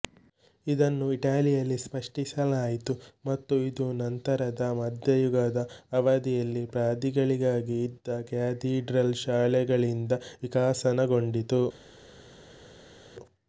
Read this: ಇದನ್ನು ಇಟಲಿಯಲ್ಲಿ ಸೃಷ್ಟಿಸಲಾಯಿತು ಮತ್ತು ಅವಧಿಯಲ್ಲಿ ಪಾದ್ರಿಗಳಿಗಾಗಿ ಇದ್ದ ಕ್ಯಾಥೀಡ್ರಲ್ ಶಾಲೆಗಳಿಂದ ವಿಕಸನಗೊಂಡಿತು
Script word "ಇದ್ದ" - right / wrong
right